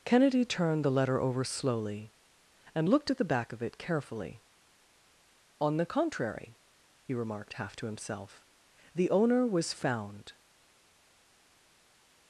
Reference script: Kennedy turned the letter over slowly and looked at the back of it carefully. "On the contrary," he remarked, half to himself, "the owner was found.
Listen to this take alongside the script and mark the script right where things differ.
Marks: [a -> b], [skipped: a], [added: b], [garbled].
Kennedy turned the letter over slowly and looked at the back of it carefully. "On the contrary," he remarked, half to himself, "the owner was found.